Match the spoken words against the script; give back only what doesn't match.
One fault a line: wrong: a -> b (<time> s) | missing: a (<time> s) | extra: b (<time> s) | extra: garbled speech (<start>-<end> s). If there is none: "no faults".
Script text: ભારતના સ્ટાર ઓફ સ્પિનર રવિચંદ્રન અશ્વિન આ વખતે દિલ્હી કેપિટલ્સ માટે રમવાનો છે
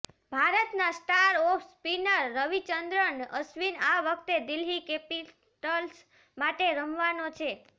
no faults